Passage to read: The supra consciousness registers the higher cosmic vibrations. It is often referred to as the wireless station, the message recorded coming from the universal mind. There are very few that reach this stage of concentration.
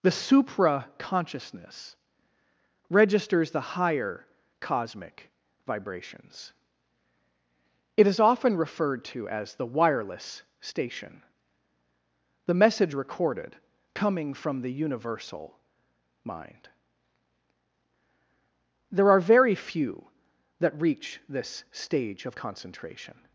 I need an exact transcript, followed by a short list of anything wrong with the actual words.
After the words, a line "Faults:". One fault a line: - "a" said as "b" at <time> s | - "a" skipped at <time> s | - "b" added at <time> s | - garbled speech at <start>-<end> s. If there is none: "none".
The supra consciousness registers the higher cosmic vibrations. It is often referred to as the wireless station, the message recorded coming from the universal mind. There are very few that reach this stage of concentration.
Faults:
none